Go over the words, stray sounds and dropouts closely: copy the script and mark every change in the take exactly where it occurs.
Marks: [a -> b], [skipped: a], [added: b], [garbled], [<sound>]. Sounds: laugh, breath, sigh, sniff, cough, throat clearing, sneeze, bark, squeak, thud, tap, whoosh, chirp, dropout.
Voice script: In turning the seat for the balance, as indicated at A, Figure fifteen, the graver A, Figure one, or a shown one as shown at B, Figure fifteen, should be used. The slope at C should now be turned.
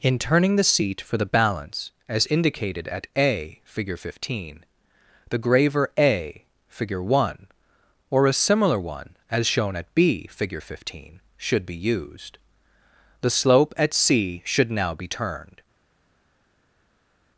In turning the seat for the balance, as indicated at A, Figure fifteen, the graver A, Figure one, or a [shown -> similar] one as shown at B, Figure fifteen, should be used. The slope at C should now be turned.